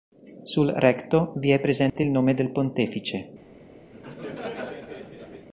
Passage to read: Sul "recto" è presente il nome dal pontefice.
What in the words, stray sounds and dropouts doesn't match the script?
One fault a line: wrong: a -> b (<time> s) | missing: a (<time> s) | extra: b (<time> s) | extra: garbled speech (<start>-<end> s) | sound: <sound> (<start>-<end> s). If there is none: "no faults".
extra: vi (1.3 s)
sound: dropout (1.9-2.0 s)
wrong: dal -> del (2.4 s)
sound: laugh (3.9-5.5 s)